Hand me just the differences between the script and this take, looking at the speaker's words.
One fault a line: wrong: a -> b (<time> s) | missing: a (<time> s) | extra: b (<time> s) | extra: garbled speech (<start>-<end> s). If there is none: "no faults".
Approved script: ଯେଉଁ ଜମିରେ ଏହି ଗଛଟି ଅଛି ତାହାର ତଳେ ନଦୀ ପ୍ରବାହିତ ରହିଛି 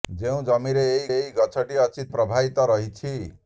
extra: ଏହି (1.1 s)
missing: ତାହାର ତଳେ ନଦୀ (2.1 s)